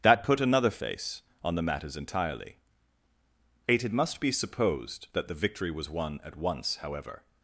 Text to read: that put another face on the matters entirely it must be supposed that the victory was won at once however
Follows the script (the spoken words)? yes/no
yes